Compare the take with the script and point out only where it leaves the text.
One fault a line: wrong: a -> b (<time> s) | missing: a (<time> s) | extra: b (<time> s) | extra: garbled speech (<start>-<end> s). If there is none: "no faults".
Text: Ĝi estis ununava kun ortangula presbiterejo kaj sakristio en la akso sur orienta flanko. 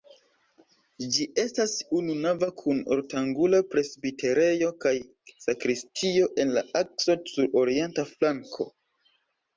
wrong: estis -> estas (1.4 s)